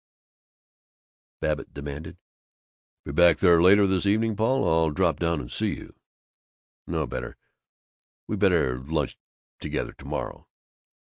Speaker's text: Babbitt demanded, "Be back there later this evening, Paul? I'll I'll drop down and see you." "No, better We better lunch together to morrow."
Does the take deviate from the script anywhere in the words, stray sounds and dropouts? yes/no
yes